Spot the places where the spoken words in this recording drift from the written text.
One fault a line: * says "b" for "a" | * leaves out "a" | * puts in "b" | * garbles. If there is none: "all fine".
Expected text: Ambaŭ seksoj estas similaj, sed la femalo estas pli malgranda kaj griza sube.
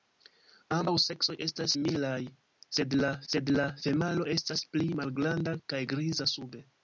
* puts in "sed la"